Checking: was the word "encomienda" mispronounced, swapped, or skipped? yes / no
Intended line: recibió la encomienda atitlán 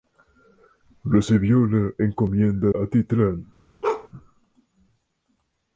no